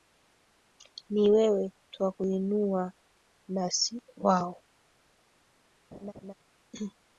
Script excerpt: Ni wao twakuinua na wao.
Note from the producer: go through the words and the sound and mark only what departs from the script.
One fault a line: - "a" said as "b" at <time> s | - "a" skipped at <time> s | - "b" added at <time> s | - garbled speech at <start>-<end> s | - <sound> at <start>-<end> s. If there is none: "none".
- "wao" said as "wewe" at 1.3 s
- "si" added at 3.7 s
- laugh at 5.9-6.3 s